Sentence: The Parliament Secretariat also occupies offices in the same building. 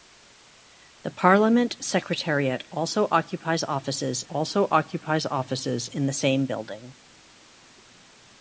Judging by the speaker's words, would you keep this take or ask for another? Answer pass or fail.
fail